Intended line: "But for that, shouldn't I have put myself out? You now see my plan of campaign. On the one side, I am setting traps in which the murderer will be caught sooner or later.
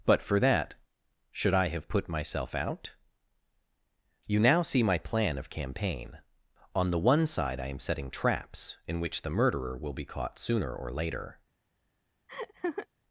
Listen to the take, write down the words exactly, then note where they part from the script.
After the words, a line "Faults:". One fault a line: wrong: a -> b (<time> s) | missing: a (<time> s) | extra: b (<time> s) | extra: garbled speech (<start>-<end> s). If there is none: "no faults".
"But for that, should I have put myself out? You now see my plan of campaign. On the one side, I am setting traps in which the murderer will be caught sooner or later.
Faults:
wrong: shouldn't -> should (1.3 s)